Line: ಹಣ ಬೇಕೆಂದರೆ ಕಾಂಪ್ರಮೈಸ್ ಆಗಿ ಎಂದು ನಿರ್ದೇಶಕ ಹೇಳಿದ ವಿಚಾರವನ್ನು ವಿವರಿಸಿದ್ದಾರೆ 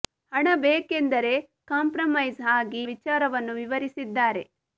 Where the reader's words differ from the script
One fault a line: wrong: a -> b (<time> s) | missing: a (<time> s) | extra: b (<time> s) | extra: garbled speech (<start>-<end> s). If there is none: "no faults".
missing: ಎಂದು ನಿರ್ದೇಶಕ ಹೇಳಿದ (2.8 s)